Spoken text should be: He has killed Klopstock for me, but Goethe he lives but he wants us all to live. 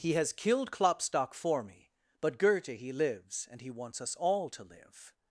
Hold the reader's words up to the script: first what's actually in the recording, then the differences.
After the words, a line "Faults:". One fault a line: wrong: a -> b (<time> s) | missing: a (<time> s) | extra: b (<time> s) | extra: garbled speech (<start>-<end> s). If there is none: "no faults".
He has killed Klopstock for me, but Goethe he lives and he wants us all to live.
Faults:
wrong: but -> and (3.5 s)